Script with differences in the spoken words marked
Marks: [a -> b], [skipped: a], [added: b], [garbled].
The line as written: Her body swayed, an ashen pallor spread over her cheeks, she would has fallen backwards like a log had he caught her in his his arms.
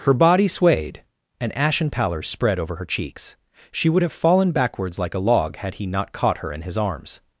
Her body swayed, an ashen pallor spread over her cheeks, she would [has -> have] fallen backwards like a log had he [added: not] caught her in his [skipped: his] arms.